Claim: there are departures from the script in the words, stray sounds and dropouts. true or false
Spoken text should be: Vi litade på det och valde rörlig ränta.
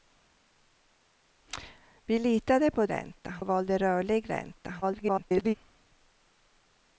true